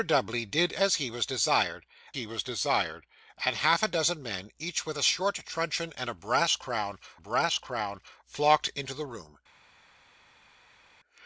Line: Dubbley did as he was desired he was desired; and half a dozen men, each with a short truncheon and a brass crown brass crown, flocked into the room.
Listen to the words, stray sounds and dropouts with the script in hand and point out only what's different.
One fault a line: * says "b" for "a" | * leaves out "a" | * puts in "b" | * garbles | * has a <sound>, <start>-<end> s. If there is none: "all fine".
all fine